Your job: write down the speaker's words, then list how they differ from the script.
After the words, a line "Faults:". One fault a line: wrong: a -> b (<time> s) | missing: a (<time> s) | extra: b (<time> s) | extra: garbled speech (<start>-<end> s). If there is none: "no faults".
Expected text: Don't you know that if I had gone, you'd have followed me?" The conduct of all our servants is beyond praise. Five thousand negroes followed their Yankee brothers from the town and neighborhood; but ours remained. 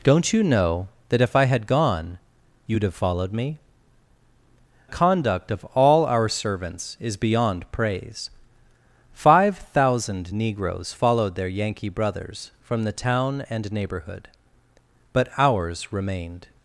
Don't you know that if I had gone, you'd have followed me?" Conduct of all our servants is beyond praise. Five thousand negroes followed their Yankee brothers from the town and neighborhood; but ours remained.
Faults:
missing: The (3.6 s)